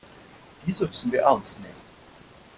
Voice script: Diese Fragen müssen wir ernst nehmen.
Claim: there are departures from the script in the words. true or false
true